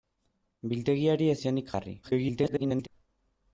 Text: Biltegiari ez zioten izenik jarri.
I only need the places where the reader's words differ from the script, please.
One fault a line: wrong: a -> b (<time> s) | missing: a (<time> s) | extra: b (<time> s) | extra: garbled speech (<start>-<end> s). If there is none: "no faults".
missing: zioten (1.4 s)
extra: garbled speech (2.0-2.9 s)